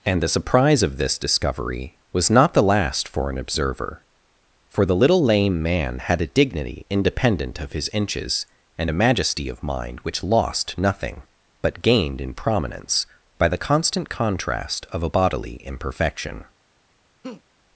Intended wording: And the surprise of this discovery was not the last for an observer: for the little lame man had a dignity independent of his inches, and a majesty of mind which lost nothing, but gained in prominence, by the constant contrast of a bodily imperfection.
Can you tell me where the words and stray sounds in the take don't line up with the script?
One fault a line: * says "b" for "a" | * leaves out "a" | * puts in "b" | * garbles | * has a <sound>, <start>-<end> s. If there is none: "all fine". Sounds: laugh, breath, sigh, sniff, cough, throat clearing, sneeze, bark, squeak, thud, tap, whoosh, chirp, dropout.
* has a laugh, 17.2-17.4 s